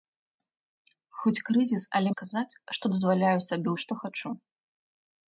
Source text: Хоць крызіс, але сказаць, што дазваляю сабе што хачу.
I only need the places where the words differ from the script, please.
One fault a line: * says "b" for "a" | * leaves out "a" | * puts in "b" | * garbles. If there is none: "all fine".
all fine